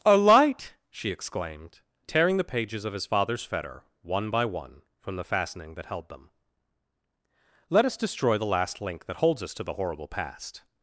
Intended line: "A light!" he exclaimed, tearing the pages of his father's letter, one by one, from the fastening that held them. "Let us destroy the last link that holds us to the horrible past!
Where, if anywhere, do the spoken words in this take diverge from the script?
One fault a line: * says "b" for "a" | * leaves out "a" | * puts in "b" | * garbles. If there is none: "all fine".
* says "she" for "he"
* says "fetter" for "letter"